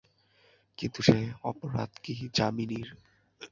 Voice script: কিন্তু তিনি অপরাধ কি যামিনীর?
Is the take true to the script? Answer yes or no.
no